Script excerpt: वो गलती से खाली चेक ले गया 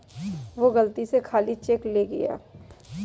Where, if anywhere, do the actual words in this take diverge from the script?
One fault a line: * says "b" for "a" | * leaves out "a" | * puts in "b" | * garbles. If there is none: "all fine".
all fine